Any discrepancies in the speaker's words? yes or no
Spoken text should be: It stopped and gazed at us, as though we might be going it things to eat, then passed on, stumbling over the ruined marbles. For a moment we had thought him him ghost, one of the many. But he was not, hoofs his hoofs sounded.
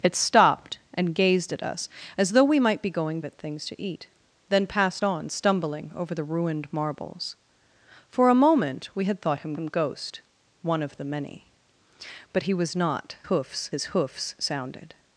no